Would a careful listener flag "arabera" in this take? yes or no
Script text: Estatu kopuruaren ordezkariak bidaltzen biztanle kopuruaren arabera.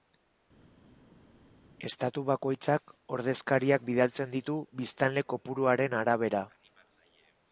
no